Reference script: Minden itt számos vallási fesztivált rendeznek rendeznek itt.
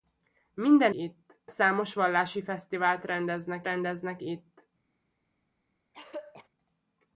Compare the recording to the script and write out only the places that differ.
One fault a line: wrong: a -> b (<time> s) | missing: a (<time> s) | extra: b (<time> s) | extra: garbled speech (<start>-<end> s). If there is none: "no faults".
no faults